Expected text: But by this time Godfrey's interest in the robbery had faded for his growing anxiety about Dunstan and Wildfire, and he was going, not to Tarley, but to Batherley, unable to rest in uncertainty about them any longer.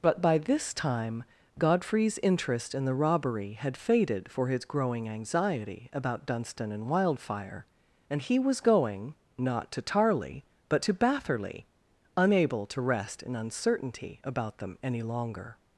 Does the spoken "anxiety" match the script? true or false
true